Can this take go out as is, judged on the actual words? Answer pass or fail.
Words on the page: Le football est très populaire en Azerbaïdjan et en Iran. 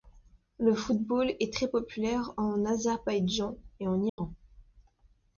pass